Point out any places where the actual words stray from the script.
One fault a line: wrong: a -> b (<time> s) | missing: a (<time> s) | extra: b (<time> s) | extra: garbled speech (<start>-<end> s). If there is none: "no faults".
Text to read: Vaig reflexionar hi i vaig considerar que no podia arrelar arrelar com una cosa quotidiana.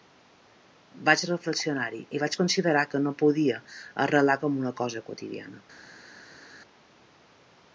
missing: arrelar (4.4 s)